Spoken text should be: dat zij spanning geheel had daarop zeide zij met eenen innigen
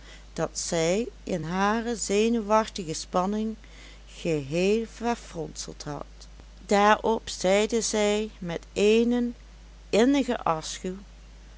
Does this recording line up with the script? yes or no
no